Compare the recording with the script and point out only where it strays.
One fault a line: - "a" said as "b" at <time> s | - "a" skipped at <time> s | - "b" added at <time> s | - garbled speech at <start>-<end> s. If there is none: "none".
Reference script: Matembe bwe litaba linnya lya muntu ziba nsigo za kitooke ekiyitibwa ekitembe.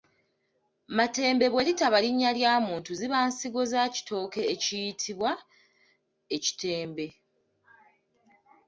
none